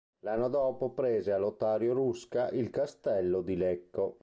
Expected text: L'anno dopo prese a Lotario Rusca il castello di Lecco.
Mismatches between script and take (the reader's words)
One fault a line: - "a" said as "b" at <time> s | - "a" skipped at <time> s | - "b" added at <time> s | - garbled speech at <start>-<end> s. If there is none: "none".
none